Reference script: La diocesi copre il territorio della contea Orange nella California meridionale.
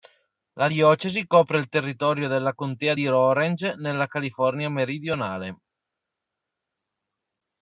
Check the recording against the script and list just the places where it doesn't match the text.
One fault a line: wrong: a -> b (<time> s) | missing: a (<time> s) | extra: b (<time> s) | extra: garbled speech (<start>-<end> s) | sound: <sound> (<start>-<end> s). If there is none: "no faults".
extra: di (2.9 s)